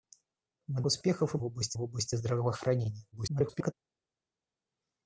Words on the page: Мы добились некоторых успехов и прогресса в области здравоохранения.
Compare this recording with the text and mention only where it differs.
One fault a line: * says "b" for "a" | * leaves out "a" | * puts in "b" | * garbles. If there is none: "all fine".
* leaves out "добились некоторых"
* says "области" for "прогресса"
* garbles